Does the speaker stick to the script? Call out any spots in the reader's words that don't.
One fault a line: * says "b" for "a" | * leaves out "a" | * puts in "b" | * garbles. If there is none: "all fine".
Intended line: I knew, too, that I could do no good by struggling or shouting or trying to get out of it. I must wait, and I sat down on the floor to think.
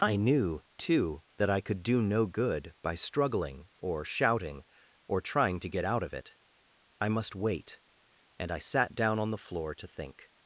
all fine